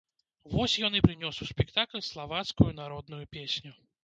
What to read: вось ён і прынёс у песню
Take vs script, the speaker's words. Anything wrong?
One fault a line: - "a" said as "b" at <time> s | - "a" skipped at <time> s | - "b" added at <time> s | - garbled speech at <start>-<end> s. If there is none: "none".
- "спектакль славацкую народную" added at 1.5 s